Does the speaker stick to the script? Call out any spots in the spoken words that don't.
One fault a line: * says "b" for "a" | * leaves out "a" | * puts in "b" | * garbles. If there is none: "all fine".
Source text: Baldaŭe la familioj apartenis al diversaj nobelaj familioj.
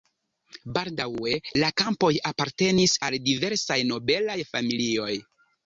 * says "kampoj" for "familioj"